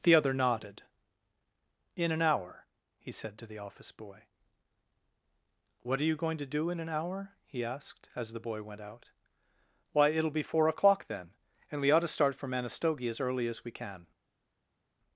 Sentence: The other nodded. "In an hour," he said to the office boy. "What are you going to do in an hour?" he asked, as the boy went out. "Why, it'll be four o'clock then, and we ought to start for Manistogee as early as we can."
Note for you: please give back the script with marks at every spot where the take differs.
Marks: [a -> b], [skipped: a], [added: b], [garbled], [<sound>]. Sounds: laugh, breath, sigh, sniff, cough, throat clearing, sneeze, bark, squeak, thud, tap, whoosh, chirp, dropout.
The other nodded. "In an hour," he said to the office boy. "What are you going to do in an hour?" he asked, as the boy went out. "Why, it'll be four o'clock then, and we ought to start for Manistogee as early as we can."